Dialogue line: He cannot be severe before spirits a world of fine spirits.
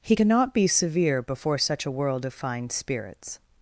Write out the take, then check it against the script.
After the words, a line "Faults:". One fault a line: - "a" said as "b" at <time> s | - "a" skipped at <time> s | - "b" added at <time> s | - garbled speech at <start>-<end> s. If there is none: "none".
He cannot be severe before such a world of fine spirits.
Faults:
- "spirits" said as "such" at 1.6 s